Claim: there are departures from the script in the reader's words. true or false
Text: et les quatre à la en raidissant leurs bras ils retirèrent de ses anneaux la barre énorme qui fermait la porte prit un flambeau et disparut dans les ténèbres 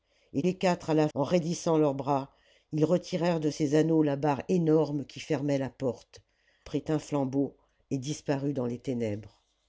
false